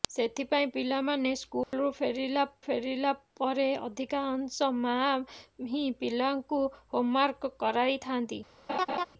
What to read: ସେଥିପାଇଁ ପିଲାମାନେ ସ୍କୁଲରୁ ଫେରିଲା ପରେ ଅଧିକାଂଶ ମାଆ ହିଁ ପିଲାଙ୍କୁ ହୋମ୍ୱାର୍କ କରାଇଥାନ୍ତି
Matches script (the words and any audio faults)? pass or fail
fail